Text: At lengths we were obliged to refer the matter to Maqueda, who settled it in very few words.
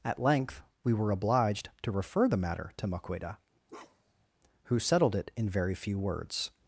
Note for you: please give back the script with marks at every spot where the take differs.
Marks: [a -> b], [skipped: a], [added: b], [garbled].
At [lengths -> length] we were obliged to refer the matter to Maqueda, who settled it in very few words.